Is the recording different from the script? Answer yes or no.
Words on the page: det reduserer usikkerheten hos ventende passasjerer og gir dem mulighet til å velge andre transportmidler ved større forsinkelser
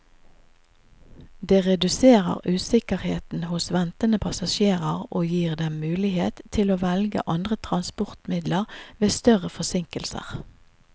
no